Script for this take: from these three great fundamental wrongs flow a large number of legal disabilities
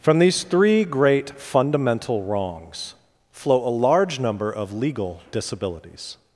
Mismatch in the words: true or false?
false